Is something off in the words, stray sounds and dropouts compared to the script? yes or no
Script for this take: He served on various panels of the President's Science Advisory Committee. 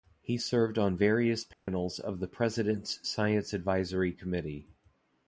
yes